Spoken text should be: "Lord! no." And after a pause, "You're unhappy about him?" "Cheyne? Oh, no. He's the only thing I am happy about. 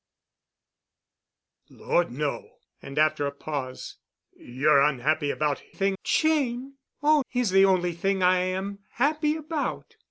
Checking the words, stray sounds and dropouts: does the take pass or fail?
fail